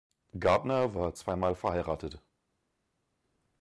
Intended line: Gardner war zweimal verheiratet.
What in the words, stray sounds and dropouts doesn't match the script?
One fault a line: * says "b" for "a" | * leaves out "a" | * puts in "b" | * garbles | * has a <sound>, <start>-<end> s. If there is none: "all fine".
all fine